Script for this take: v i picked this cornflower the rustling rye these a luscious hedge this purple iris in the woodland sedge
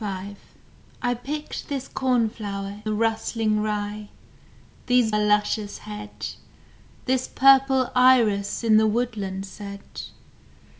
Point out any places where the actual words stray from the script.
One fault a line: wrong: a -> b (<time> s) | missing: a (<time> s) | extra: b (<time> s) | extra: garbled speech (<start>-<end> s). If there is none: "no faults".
no faults